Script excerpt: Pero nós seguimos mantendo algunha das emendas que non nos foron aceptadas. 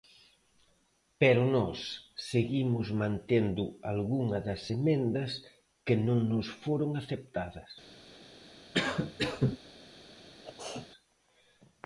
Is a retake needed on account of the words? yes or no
no